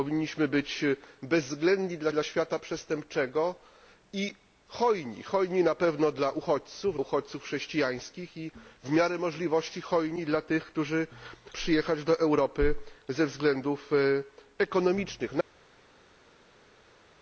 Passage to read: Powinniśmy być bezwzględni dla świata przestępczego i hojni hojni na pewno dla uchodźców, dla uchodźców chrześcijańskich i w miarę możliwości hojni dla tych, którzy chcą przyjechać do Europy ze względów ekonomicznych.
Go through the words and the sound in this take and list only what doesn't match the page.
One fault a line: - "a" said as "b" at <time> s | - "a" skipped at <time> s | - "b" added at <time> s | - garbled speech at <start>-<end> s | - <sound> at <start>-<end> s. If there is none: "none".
- "dla" added at 2.1 s
- "dla" skipped at 7.0 s
- "chcą" skipped at 11.1 s